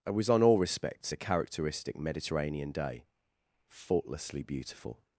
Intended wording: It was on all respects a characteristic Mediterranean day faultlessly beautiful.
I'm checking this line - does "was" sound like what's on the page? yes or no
yes